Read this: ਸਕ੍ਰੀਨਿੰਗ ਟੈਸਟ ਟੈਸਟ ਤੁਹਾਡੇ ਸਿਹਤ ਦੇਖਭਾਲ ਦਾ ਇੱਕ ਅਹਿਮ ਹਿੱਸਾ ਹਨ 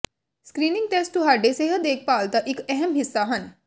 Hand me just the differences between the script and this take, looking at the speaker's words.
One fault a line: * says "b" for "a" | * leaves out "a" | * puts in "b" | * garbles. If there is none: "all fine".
* leaves out "ਟੈਸਟ"